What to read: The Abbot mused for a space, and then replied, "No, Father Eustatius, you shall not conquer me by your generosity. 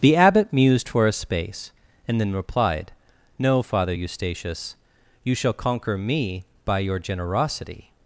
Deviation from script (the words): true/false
true